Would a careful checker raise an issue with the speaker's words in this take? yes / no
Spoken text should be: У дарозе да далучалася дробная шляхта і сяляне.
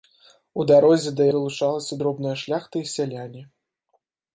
no